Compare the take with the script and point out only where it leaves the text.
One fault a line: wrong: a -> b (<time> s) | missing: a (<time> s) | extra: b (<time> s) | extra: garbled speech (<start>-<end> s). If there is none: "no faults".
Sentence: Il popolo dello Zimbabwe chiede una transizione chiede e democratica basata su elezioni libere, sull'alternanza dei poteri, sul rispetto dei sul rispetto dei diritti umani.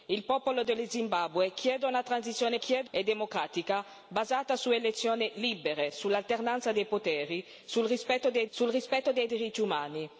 no faults